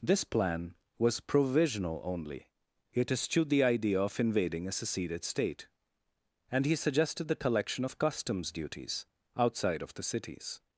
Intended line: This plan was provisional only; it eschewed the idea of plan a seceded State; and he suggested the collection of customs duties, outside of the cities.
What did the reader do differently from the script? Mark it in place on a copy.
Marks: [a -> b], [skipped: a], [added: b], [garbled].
This plan was provisional only; it eschewed the idea of [plan -> invading] a seceded State; and he suggested the collection of customs duties, outside of the cities.